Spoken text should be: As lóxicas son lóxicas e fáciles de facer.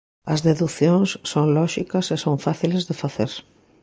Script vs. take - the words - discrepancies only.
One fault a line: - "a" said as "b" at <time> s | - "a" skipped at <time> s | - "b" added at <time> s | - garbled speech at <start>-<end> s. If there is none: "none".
- "lóxicas" said as "deducións" at 0.5 s
- "son" added at 2.2 s